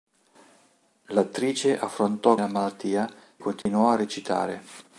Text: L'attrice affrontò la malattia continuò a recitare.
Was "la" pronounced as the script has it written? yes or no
yes